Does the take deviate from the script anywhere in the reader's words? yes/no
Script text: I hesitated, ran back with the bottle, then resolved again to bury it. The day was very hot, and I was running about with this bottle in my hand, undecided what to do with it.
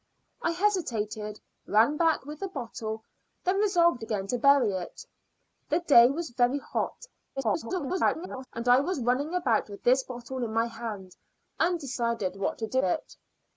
yes